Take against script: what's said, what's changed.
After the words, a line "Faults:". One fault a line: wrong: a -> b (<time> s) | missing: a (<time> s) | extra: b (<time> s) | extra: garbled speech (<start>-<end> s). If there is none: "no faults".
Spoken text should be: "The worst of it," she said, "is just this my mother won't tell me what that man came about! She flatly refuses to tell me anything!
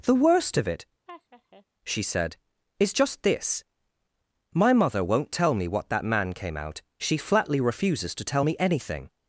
"The worst of it," she said, "is just this my mother won't tell me what that man came out! She flatly refuses to tell me anything!
Faults:
wrong: about -> out (6.5 s)